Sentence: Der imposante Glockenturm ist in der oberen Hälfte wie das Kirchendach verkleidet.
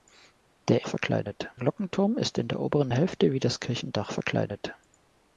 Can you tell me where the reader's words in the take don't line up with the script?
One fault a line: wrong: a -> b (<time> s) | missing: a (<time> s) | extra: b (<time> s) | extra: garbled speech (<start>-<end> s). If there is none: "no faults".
wrong: imposante -> verkleidet (0.9 s)